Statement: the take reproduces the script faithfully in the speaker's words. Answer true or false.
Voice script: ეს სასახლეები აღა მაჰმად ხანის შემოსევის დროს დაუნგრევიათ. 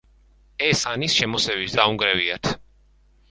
false